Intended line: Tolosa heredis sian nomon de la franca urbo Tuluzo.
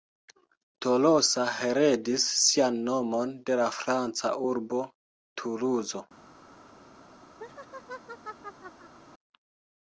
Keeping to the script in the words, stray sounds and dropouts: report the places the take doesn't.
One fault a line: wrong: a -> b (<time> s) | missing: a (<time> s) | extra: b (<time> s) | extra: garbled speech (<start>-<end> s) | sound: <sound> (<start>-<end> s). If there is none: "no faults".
sound: laugh (7.4-8.9 s)